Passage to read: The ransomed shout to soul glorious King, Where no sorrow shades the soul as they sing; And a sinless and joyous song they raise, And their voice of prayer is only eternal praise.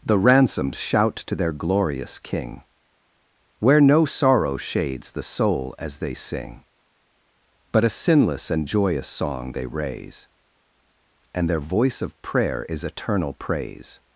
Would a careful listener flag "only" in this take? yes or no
yes